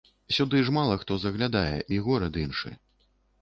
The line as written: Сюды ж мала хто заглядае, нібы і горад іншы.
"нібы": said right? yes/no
no